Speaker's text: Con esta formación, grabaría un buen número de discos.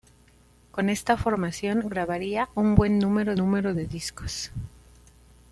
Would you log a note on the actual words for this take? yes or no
yes